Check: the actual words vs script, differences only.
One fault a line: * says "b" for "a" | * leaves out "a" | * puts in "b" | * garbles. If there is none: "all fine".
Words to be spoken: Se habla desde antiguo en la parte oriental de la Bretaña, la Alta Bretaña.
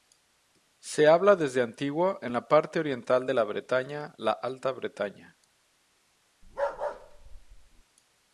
all fine